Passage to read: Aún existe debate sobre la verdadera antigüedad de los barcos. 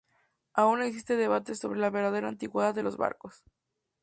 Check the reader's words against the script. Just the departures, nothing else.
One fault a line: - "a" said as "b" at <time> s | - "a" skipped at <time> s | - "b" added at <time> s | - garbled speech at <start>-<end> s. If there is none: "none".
none